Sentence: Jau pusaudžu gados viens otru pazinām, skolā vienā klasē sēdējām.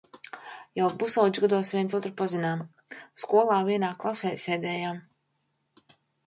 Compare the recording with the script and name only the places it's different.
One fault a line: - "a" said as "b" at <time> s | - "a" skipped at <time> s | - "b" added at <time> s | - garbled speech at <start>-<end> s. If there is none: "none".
none